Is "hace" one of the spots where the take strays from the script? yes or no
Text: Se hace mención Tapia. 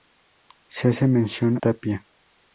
no